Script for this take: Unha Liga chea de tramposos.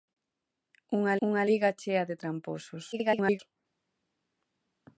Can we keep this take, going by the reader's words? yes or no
no